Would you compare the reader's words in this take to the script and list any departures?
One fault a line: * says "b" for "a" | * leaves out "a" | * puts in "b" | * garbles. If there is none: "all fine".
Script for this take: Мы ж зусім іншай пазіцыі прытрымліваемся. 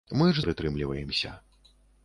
* leaves out "зусім іншай пазіцыі"